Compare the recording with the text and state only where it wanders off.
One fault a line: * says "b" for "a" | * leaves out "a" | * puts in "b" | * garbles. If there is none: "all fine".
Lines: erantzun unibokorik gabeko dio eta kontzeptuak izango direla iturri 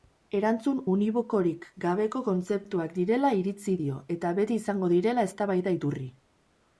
* puts in "kontzeptuak direla iritzi"
* says "beti" for "kontzeptuak"
* puts in "eztabaida"